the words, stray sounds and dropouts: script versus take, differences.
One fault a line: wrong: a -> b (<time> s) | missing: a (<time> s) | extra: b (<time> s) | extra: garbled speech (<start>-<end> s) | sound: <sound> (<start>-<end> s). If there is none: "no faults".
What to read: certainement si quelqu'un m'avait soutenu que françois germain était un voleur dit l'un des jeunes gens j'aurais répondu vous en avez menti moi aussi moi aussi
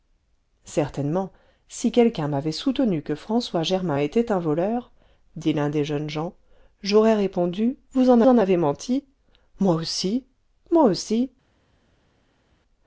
extra: en (8.3 s)